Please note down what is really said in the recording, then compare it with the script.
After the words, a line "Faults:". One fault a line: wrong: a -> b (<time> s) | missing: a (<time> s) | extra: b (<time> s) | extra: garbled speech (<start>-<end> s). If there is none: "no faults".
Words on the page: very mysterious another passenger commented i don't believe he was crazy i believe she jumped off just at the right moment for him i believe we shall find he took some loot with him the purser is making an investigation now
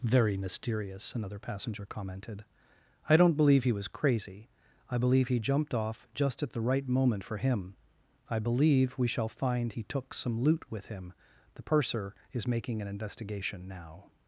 very mysterious another passenger commented i don't believe he was crazy i believe he jumped off just at the right moment for him i believe we shall find he took some loot with him the purser is making an investigation now
Faults:
wrong: she -> he (5.3 s)